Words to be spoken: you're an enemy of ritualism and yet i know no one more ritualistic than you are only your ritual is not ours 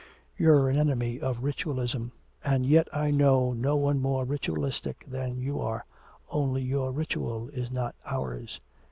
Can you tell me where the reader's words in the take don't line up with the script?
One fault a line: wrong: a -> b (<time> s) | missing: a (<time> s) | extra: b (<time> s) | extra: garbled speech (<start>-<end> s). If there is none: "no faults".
no faults